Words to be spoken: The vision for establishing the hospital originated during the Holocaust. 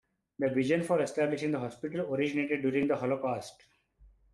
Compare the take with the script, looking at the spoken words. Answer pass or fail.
pass